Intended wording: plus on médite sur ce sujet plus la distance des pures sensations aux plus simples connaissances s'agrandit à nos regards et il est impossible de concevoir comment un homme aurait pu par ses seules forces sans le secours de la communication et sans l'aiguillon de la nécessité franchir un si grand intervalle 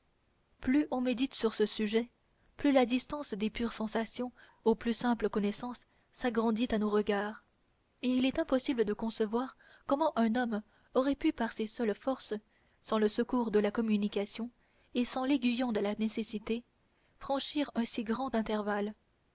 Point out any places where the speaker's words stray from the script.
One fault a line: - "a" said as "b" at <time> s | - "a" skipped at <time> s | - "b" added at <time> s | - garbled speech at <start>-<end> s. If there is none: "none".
none